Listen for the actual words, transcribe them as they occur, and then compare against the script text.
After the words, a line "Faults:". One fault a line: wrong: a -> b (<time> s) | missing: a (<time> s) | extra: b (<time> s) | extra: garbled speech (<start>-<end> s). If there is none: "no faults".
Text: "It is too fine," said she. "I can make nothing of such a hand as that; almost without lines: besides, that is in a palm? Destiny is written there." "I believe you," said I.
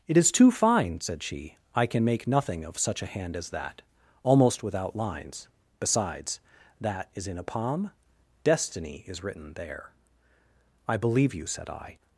"It is too fine," said she. "I can make nothing of such a hand as that; almost without lines: besides, that is in a palm? Destiny is written there." "I believe you," said I.
Faults:
no faults